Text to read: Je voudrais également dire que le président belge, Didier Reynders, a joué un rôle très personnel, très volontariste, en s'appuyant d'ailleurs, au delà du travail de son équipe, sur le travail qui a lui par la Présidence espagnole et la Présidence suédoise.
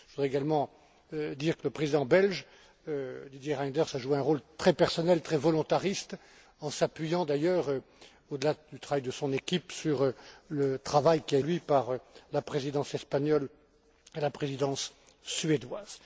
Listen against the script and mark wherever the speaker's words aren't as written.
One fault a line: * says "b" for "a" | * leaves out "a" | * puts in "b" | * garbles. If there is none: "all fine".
all fine